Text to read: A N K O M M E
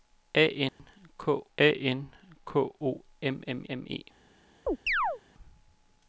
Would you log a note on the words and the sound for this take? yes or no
yes